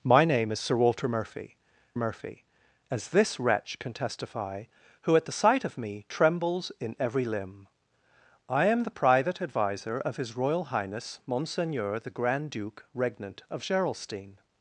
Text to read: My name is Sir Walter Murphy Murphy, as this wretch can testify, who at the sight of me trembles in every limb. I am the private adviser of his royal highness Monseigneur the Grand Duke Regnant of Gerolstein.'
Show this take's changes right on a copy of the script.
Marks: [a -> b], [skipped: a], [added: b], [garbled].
My name is Sir Walter Murphy Murphy, as this wretch can testify, who at the sight of me trembles in every limb. I am the private adviser of his royal highness Monseigneur the Grand Duke Regnant of Gerolstein.'